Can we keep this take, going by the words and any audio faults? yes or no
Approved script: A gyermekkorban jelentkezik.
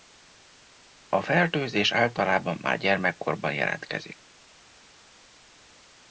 no